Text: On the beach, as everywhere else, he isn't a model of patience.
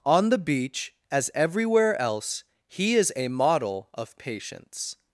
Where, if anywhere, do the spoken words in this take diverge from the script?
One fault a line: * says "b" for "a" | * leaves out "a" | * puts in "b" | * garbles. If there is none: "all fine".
* says "is" for "isn't"